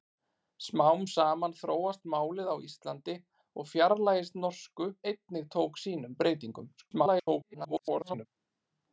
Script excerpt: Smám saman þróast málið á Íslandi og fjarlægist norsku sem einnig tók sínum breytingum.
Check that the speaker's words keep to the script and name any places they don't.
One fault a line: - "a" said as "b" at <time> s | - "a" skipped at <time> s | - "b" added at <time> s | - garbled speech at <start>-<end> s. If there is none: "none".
- "sem" skipped at 4.9 s
- garbled speech at 6.8-8.3 s